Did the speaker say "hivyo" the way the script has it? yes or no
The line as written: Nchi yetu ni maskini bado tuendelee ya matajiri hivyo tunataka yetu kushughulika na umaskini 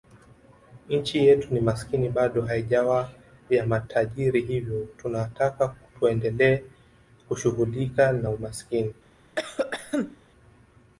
yes